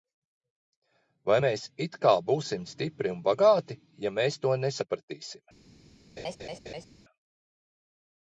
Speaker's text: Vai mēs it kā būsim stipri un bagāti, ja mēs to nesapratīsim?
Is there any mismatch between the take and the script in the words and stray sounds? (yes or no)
yes